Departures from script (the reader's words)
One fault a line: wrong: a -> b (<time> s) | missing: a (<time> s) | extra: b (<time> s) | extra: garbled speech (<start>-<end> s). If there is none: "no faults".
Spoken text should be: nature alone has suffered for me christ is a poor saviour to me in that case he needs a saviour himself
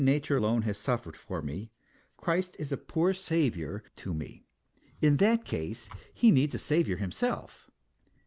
no faults